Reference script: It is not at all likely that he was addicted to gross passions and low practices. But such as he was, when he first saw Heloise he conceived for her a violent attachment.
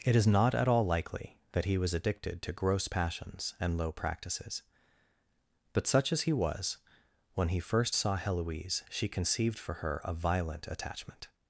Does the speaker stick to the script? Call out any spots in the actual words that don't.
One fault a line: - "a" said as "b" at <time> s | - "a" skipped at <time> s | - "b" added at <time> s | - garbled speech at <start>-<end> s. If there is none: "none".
- "he" said as "she" at 8.9 s